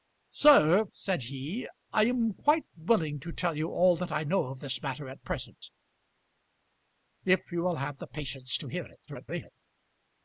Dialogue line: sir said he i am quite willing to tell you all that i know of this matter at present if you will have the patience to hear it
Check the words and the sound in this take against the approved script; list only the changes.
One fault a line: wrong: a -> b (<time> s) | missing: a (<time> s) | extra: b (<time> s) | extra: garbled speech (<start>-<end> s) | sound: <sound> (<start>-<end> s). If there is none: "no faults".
extra: garbled speech (9.1-9.5 s)